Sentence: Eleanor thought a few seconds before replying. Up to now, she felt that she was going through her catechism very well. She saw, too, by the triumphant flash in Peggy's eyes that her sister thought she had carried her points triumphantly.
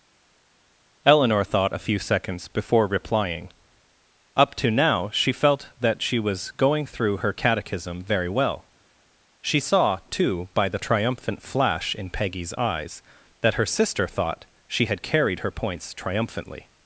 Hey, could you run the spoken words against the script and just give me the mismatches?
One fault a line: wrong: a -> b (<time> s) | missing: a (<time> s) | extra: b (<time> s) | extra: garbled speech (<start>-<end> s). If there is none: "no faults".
no faults